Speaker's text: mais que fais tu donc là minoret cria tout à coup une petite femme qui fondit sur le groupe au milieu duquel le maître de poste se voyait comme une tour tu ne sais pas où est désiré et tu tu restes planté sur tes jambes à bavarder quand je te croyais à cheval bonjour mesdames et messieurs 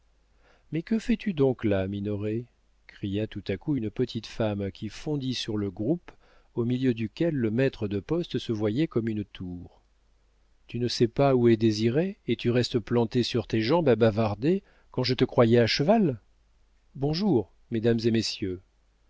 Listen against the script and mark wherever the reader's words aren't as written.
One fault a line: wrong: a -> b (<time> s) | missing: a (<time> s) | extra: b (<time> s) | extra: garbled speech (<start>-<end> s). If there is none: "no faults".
missing: tu (12.5 s)